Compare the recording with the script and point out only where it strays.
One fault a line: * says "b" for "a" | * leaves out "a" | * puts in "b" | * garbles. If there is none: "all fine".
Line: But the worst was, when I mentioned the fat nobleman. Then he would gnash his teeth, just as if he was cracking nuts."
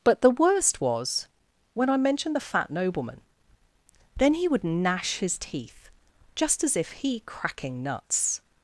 * leaves out "was"